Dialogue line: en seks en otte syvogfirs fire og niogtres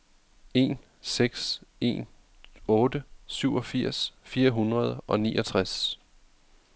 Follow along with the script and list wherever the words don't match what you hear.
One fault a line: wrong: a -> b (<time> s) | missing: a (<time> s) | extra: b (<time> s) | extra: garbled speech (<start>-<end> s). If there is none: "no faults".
extra: hundrede (4.5 s)